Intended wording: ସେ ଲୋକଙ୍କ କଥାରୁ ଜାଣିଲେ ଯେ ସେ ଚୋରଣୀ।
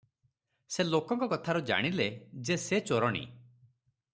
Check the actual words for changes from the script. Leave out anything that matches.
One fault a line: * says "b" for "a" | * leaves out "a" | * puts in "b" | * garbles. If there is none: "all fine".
all fine